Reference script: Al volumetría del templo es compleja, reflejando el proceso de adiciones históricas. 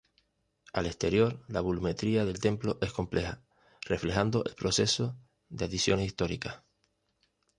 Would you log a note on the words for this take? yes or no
yes